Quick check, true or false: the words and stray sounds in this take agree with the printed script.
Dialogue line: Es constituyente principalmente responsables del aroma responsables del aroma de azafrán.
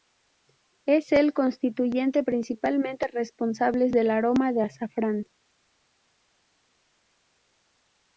false